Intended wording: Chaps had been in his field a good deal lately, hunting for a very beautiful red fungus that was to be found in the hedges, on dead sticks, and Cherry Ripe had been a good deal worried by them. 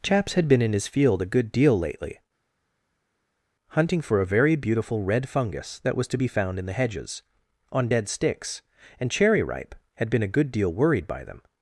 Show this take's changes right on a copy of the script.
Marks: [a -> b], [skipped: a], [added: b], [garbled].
Chaps had been in his field a good deal lately, hunting for a very beautiful red fungus that was to be found in the hedges, on dead sticks, and Cherry Ripe had been a good deal worried by them.